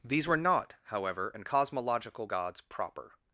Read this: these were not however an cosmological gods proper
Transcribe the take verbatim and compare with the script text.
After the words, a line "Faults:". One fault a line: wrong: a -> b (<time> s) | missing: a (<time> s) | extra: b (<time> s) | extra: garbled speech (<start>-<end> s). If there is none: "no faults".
these were not however an cosmological gods proper
Faults:
no faults